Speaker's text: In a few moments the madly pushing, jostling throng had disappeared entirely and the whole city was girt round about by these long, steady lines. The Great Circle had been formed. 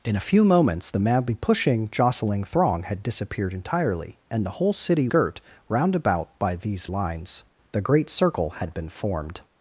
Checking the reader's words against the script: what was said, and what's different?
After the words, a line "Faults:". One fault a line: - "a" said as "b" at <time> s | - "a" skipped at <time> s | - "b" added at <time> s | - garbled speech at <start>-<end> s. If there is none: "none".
In a few moments the madly pushing, jostling throng had disappeared entirely and the whole city girt round about by these lines. The Great Circle had been formed.
Faults:
- "was" skipped at 5.1 s
- "long steady" skipped at 6.9 s